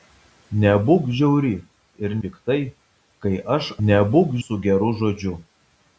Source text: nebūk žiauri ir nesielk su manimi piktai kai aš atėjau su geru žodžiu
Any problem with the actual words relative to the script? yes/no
yes